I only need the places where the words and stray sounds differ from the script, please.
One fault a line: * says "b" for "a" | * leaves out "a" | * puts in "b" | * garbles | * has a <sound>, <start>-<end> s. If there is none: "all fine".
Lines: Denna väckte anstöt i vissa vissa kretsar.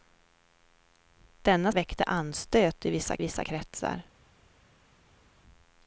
all fine